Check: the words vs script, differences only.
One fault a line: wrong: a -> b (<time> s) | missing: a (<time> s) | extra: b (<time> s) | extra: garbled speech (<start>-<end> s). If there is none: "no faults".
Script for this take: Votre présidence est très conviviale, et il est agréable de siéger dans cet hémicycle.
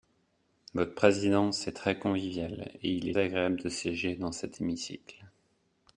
no faults